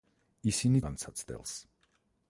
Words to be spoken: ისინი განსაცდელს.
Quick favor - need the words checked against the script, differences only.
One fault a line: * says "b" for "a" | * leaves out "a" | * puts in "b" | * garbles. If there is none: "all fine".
all fine